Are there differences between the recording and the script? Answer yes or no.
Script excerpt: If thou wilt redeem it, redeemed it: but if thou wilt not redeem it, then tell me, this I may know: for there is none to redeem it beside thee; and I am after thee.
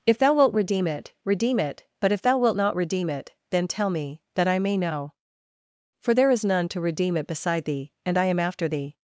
yes